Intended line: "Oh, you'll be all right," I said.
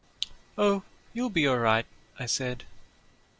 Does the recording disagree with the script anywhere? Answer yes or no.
no